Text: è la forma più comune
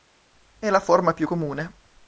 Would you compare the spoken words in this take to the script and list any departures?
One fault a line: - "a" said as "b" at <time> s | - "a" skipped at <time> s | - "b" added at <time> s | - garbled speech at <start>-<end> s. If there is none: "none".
none